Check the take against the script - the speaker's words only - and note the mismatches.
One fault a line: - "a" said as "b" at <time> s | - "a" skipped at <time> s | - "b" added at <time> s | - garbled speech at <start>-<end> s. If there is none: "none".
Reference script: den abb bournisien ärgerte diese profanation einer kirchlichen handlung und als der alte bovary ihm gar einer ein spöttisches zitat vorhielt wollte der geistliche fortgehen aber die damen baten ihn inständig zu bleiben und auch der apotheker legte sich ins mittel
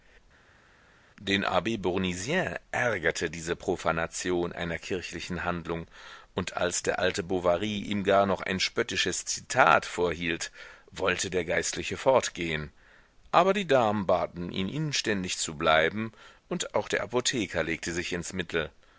- "einer" said as "noch" at 8.3 s